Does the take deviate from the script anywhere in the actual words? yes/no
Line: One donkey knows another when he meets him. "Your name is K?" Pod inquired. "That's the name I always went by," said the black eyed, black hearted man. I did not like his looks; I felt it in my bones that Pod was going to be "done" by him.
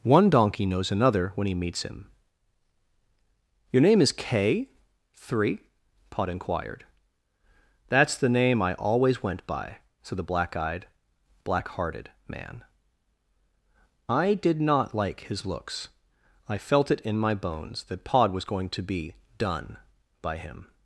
yes